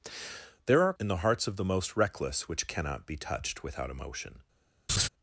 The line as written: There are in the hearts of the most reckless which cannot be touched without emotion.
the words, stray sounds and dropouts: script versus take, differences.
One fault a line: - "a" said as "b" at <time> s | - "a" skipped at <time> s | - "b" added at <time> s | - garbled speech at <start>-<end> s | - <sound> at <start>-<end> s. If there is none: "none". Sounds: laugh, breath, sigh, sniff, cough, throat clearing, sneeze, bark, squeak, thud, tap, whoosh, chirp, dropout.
- laugh at 4.9-5.1 s